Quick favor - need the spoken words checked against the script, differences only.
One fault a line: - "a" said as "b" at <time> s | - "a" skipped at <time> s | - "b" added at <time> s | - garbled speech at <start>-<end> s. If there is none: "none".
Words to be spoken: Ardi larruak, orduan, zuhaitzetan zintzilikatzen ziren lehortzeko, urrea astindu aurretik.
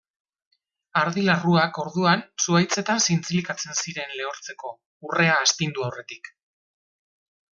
none